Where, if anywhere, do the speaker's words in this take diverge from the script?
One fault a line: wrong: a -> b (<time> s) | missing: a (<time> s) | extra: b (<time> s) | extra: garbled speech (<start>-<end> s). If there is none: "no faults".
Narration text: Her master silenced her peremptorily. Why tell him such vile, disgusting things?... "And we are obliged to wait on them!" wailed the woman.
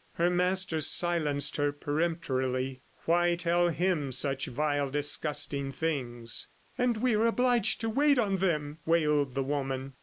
no faults